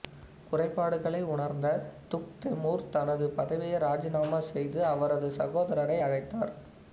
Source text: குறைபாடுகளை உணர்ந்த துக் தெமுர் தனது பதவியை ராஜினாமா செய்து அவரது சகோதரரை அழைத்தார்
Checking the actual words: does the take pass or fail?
pass